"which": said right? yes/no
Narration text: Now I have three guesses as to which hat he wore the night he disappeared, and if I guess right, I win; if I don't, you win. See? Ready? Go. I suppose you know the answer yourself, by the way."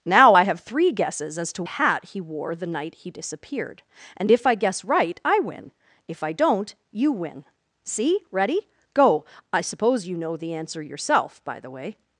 no